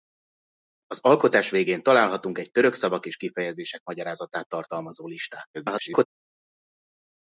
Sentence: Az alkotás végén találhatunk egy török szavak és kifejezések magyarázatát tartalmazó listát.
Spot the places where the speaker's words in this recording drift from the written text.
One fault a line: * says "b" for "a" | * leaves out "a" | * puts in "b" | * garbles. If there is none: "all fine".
* garbles